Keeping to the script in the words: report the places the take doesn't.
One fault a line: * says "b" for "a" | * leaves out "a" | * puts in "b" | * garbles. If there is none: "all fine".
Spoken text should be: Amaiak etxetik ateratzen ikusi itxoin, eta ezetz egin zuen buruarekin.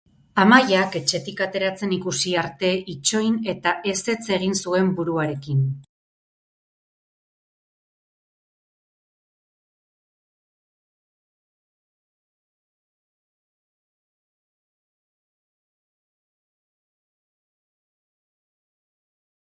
* puts in "arte"